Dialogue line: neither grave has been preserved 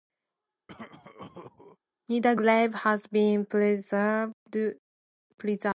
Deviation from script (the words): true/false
false